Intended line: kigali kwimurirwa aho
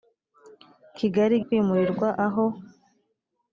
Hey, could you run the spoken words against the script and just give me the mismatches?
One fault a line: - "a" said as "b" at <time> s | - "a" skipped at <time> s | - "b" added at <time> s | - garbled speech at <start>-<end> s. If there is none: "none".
none